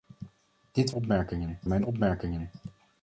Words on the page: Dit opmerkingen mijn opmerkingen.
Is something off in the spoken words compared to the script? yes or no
no